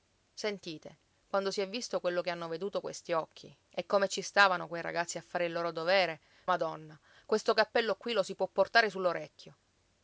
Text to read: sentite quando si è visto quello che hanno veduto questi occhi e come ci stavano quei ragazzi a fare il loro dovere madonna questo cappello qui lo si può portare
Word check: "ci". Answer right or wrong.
right